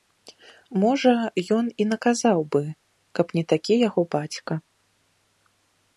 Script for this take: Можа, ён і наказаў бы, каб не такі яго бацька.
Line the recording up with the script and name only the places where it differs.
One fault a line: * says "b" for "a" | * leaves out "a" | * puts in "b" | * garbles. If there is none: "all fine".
all fine